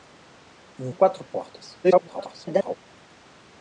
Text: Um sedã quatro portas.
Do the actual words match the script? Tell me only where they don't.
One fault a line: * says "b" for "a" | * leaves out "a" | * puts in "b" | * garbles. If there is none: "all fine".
* leaves out "sedã"
* garbles